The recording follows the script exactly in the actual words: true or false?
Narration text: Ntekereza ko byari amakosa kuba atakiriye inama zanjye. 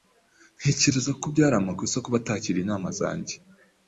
true